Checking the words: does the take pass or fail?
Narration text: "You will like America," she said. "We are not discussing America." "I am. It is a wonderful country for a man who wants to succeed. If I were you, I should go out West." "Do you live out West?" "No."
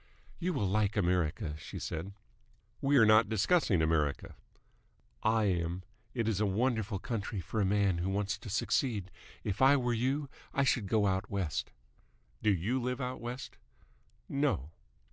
pass